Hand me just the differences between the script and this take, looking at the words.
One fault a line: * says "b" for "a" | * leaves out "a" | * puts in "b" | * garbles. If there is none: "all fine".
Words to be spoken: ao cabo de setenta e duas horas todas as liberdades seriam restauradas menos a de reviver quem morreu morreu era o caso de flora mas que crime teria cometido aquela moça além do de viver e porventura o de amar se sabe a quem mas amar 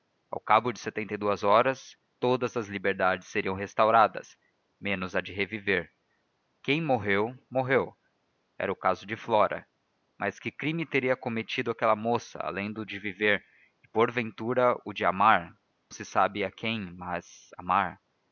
all fine